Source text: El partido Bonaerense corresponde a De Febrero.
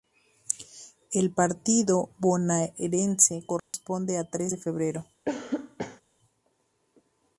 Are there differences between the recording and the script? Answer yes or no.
yes